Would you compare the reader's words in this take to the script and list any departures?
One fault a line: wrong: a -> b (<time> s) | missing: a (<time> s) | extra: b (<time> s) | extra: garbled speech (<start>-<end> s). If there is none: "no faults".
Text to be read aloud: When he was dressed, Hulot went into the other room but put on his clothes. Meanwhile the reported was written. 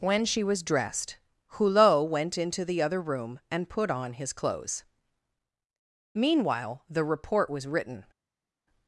wrong: he -> she (0.2 s)
wrong: but -> and (3.5 s)
wrong: reported -> report (7.0 s)